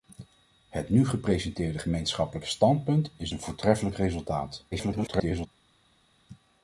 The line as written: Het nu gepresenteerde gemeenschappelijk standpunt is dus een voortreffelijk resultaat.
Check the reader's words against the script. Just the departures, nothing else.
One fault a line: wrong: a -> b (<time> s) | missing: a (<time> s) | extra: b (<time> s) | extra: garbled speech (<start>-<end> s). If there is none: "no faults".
missing: dus (3.3 s)
extra: garbled speech (4.7-5.5 s)